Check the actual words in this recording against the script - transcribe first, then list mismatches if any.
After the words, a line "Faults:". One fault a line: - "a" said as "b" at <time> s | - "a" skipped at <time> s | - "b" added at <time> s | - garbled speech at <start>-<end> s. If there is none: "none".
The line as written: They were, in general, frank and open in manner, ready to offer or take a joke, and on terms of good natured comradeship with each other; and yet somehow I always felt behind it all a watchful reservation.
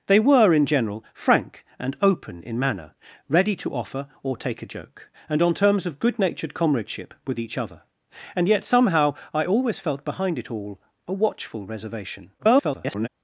They were, in general, frank and open in manner, ready to offer or take a joke, and on terms of good natured comradeship with each other; and yet somehow I always felt behind it all a watchful reservation. [garbled]
Faults:
- garbled speech at 12.4-13.1 s